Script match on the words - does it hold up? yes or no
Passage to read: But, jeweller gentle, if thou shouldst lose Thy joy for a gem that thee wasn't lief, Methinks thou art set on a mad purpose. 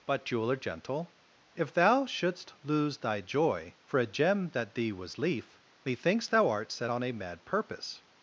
no